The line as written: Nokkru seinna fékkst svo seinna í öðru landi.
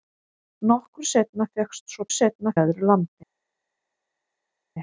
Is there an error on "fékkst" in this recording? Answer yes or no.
no